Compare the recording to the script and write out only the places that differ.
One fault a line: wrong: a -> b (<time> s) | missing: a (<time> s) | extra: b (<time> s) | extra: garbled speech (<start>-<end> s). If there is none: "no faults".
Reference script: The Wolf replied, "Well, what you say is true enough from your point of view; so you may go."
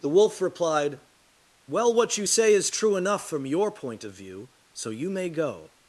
no faults